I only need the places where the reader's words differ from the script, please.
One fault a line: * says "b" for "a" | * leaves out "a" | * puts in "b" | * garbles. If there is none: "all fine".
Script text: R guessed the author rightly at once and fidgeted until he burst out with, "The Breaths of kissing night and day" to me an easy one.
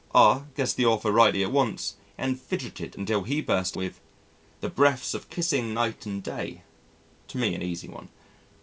* leaves out "out"